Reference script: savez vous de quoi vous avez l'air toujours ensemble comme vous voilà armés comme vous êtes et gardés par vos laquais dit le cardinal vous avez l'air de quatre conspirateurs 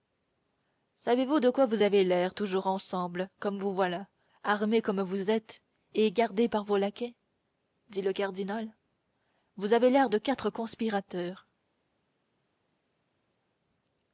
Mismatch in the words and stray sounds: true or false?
false